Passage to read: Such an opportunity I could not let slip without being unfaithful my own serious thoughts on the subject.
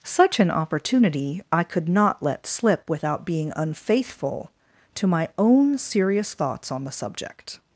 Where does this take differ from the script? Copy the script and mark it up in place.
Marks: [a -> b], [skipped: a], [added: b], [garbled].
Such an opportunity I could not let slip without being unfaithful [added: to] my own serious thoughts on the subject.